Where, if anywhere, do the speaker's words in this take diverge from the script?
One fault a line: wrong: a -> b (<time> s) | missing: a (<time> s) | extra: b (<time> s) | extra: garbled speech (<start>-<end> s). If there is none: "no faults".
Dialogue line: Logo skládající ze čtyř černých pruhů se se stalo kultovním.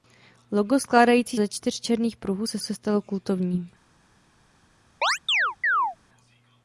no faults